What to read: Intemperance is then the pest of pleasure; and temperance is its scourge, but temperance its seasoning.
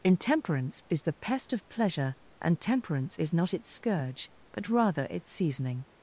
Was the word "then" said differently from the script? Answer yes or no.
yes